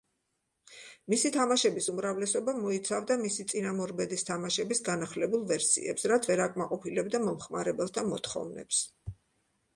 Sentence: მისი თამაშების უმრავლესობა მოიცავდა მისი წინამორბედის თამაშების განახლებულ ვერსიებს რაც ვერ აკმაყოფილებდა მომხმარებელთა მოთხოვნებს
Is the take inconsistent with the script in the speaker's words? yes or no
no